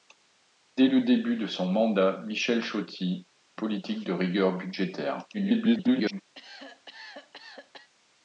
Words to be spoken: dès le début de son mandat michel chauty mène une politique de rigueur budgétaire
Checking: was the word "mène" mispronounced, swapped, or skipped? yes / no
yes